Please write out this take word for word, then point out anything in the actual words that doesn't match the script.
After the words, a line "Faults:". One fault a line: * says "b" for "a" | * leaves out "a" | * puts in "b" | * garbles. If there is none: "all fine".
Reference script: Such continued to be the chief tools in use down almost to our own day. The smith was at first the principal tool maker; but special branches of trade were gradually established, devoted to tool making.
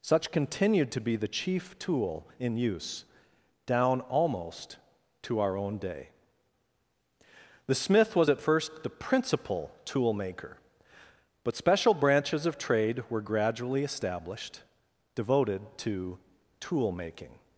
Such continued to be the chief tool in use down almost to our own day. The smith was at first the principal tool maker; but special branches of trade were gradually established, devoted to tool making.
Faults:
* says "tool" for "tools"